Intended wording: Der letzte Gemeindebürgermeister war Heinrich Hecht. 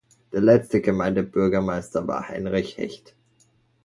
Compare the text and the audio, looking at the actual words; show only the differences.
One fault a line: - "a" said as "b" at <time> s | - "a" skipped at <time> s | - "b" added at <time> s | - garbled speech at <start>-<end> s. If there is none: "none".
none